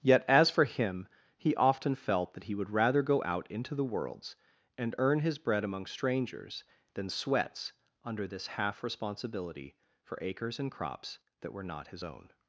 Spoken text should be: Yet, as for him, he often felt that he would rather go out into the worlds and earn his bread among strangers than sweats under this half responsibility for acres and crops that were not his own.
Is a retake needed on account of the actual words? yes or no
no